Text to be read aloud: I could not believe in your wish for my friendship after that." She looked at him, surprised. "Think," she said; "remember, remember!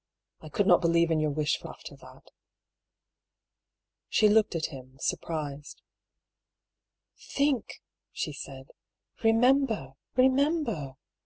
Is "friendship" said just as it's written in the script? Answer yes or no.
no